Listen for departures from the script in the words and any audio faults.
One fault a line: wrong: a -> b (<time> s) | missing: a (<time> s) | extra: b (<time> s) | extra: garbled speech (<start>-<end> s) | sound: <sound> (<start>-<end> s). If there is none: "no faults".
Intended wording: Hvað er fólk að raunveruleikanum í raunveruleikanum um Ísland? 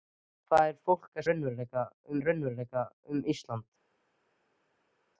no faults